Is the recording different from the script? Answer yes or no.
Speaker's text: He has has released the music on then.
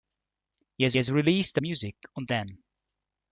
no